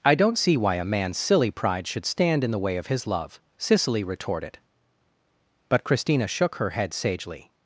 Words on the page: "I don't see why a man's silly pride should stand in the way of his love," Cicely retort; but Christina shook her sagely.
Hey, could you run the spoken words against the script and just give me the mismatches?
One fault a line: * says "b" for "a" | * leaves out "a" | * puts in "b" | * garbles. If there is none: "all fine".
* says "retorted" for "retort"
* puts in "head"